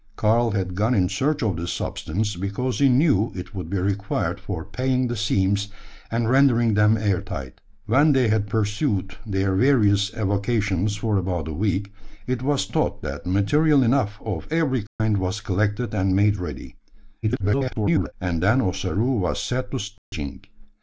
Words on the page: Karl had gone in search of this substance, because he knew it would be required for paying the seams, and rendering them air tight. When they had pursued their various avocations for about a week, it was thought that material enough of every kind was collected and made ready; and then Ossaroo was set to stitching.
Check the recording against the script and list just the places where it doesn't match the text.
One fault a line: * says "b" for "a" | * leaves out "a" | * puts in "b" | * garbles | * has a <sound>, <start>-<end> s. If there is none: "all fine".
* has a dropout, 14.9-15.0 s
* garbles
* has a dropout, 20.0-20.1 s